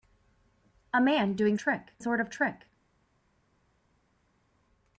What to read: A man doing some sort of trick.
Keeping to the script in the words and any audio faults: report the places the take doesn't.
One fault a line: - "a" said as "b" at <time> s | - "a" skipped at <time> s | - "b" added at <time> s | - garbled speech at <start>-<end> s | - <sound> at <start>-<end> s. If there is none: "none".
- "some" said as "trick" at 1.6 s